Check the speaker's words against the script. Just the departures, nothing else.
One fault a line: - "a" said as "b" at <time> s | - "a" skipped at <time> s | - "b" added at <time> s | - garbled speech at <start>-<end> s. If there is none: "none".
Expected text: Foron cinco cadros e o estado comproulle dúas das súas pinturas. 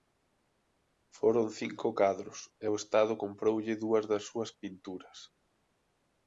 none